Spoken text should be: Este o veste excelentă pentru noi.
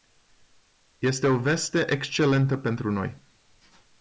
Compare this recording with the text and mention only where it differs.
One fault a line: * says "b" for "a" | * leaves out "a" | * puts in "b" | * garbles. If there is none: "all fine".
all fine